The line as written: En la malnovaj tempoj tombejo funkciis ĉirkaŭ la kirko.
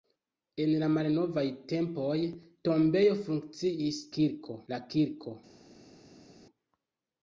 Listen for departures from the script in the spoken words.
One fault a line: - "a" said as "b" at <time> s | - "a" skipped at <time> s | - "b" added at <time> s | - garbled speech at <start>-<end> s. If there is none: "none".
- "ĉirkaŭ" said as "kirko" at 4.2 s